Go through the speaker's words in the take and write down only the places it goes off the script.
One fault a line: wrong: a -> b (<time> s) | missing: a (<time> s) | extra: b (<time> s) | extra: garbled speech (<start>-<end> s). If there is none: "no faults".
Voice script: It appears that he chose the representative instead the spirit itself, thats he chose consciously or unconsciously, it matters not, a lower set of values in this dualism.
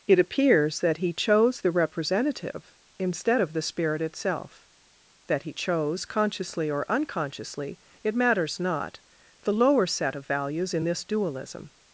extra: of (3.4 s)
wrong: thats -> that (5.3 s)
wrong: a -> the (9.4 s)